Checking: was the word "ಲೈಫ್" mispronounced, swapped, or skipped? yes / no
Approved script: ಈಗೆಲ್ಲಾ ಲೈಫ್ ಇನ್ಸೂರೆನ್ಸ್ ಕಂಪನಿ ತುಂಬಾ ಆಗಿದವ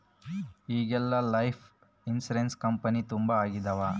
no